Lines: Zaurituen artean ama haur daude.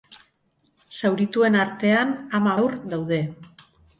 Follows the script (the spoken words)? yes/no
yes